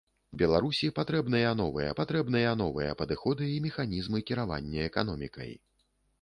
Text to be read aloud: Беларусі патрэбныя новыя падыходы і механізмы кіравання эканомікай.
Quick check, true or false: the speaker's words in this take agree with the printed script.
false